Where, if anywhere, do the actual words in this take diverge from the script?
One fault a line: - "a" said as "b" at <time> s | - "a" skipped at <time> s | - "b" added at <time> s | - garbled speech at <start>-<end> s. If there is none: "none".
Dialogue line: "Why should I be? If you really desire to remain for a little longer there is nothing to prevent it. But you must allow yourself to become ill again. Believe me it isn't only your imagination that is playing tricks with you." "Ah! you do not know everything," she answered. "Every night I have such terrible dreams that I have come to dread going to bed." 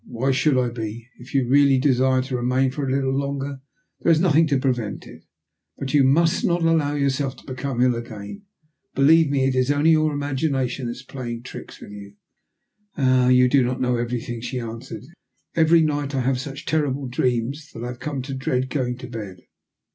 - "not" added at 6.4 s
- "isn't" said as "is" at 9.5 s